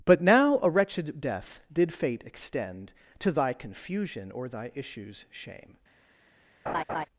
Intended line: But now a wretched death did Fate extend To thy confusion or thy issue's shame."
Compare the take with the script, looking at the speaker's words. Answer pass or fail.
pass